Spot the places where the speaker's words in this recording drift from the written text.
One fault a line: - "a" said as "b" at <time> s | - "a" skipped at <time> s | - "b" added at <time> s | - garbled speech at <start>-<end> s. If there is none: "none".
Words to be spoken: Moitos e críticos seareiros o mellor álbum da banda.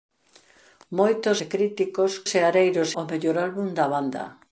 none